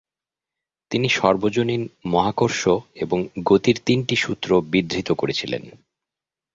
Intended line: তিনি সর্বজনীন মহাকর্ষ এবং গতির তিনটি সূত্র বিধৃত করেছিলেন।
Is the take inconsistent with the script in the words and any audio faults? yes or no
no